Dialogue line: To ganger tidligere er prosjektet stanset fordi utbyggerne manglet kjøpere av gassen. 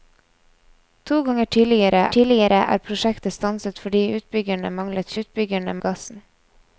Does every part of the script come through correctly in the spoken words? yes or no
no